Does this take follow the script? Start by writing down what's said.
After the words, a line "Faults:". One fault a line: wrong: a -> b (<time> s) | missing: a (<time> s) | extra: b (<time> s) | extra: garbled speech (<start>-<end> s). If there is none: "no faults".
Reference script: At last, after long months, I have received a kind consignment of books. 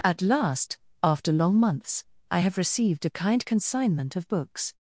At last, after long months, I have received a kind consignment of books.
Faults:
no faults